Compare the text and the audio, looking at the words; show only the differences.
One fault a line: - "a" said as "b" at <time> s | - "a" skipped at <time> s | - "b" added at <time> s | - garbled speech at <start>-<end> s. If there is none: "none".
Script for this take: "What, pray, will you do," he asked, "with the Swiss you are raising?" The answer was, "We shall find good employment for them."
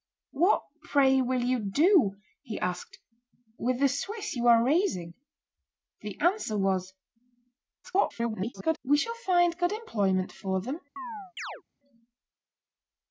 - garbled speech at 7.8-8.8 s